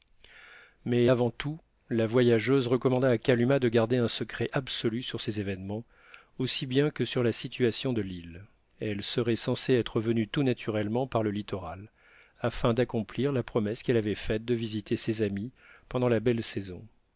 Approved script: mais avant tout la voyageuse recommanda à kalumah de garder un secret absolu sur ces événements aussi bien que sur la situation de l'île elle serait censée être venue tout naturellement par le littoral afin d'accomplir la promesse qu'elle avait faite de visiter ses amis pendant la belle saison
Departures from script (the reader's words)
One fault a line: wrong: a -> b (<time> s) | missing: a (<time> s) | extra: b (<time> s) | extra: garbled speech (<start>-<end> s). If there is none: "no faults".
no faults